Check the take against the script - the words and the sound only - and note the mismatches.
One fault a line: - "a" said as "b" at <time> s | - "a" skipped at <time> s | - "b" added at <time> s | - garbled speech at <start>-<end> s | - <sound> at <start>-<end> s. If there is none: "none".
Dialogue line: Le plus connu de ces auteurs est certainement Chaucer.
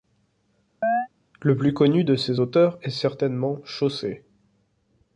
- chirp at 0.8-1.1 s